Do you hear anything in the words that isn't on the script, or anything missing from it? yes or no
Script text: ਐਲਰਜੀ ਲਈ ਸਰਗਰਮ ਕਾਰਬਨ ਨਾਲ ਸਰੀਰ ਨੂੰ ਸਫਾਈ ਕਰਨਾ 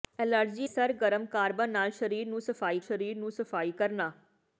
yes